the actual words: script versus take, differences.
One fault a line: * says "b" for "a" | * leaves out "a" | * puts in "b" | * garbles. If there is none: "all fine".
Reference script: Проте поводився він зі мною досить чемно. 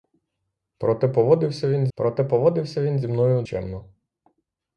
* puts in "проте поводився він"
* leaves out "досить"